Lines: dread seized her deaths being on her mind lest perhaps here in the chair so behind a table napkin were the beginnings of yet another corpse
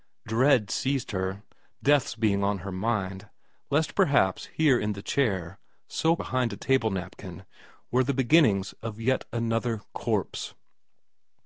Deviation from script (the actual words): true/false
false